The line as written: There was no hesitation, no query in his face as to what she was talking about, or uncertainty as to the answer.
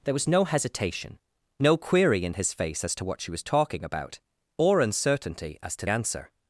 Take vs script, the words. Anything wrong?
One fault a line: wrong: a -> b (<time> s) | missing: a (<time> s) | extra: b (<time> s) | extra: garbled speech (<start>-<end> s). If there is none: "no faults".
missing: the (5.8 s)